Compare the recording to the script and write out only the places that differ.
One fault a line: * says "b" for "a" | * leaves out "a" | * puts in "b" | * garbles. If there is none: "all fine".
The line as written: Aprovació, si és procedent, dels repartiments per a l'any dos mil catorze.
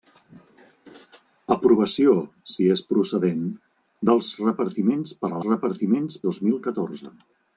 * says "repartiments" for "l'any"